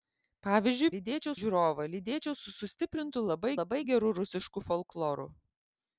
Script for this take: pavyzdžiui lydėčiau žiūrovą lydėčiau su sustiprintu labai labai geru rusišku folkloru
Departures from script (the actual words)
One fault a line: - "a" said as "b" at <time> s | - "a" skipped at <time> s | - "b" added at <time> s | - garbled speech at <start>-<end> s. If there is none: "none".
none